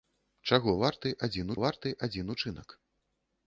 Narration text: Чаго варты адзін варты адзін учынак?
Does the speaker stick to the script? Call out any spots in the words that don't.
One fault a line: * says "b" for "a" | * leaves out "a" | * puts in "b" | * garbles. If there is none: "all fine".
all fine